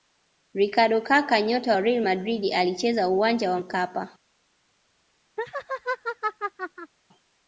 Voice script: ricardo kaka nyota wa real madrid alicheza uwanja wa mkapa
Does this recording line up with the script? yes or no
yes